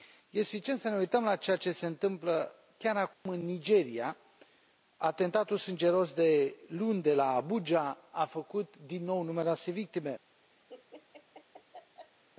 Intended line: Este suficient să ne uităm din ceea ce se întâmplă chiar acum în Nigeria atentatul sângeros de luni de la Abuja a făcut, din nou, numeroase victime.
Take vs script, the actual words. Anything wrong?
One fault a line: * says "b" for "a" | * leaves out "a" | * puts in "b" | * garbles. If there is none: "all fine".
* says "la" for "din"